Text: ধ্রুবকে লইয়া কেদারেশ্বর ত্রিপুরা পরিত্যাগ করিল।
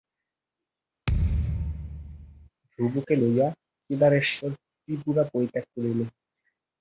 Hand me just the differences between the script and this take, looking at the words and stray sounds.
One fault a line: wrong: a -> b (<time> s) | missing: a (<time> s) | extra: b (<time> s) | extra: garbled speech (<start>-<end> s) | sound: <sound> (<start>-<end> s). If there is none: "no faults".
sound: thud (1.1-2.5 s)